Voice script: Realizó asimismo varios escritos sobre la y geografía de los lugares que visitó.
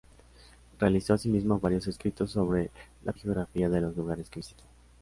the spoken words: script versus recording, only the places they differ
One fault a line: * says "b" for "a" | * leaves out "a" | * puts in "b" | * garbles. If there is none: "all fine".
all fine